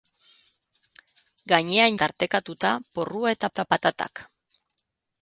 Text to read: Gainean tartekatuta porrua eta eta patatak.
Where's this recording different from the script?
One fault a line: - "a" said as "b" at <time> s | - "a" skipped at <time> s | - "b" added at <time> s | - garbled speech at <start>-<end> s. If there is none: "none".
none